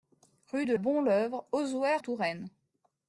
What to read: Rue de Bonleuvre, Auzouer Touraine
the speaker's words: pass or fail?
pass